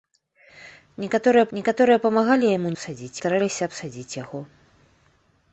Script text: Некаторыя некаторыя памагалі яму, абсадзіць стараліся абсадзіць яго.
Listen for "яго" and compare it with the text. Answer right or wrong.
right